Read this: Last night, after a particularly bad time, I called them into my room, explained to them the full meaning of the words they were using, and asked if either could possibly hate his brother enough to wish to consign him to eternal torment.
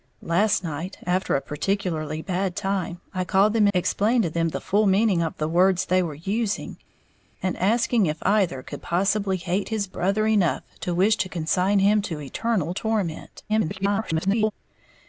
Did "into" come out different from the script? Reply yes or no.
yes